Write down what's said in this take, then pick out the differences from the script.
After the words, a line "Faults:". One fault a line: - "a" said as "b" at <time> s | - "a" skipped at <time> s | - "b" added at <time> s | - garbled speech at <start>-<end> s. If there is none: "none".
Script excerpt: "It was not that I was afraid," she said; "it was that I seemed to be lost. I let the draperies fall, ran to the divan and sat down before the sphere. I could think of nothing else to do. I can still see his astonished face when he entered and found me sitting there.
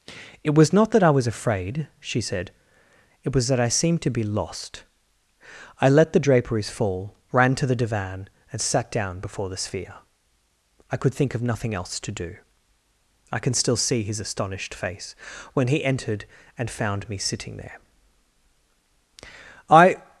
"It was not that I was afraid," she said; "it was that I seemed to be lost. I let the draperies fall, ran to the divan and sat down before the sphere. I could think of nothing else to do. I can still see his astonished face when he entered and found me sitting there. "'I
Faults:
- "I" added at 19.7 s